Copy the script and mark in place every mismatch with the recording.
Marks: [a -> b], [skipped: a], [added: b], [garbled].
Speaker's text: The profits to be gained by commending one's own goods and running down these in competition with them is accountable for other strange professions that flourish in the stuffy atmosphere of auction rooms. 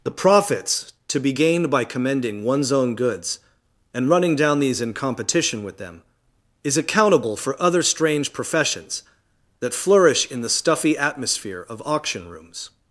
The profits to be gained by commending one's own goods and running down these in competition with them is accountable for other strange professions that flourish in the stuffy atmosphere of auction rooms.